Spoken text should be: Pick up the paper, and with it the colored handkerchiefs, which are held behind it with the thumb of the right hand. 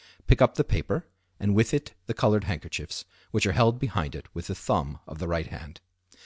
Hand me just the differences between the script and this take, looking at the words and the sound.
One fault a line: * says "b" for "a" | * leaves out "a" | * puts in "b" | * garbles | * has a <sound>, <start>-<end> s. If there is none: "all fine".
all fine